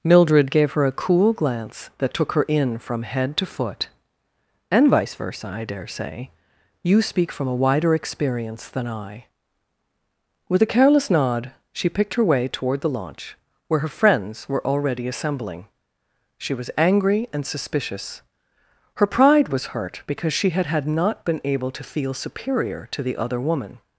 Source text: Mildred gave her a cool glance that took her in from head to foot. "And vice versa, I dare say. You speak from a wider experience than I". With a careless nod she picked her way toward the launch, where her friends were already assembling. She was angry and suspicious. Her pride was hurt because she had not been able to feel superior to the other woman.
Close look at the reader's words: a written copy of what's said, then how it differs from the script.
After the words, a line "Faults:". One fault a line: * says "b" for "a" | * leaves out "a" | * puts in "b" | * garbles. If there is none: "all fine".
Mildred gave her a cool glance that took her in from head to foot. "And vice versa, I dare say. You speak from a wider experience than I". With a careless nod she picked her way toward the launch, where her friends were already assembling. She was angry and suspicious. Her pride was hurt because she had had not been able to feel superior to the other woman.
Faults:
* puts in "had"